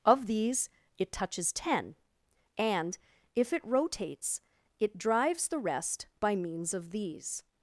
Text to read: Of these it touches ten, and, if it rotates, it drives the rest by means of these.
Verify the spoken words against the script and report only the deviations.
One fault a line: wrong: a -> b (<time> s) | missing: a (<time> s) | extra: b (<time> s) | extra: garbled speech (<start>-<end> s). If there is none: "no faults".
no faults